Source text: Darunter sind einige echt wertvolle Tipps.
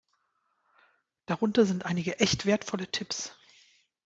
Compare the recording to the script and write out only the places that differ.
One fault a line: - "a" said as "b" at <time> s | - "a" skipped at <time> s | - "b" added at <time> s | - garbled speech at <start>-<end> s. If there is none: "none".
none